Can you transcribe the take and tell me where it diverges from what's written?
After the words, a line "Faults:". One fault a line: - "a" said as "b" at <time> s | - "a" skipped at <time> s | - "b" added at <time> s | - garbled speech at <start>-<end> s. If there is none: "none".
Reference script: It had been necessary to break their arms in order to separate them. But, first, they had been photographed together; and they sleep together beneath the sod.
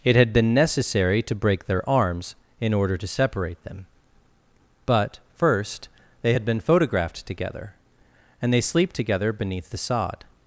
It had been necessary to break their arms in order to separate them. But, first, they had been photographed together; and they sleep together beneath the sod.
Faults:
none